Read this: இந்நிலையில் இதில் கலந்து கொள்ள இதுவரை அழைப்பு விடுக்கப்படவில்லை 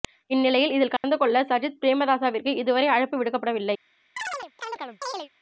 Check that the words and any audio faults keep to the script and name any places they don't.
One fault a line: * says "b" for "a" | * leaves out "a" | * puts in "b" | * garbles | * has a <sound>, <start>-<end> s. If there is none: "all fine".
* has a dropout, 1.0-1.0 s
* puts in "சஜித் பிரேமதாசவிற்கு"
* has a chirp, 4.2-5.3 s